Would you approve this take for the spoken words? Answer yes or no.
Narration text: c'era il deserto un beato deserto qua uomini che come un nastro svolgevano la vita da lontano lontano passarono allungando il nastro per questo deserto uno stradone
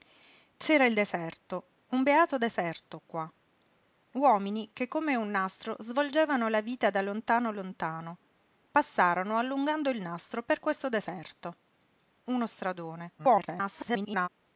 no